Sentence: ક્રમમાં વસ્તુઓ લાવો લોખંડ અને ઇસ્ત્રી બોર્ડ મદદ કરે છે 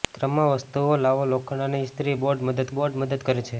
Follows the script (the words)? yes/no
no